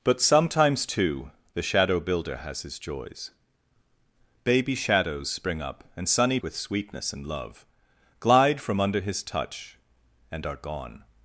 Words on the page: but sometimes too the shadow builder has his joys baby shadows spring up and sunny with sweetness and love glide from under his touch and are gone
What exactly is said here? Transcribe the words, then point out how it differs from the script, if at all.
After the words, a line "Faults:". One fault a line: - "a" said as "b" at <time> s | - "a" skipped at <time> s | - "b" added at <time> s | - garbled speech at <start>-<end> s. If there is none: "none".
but sometimes too the shadow builder has his joys baby shadows spring up and sunny with sweetness and love glide from under his touch and are gone
Faults:
none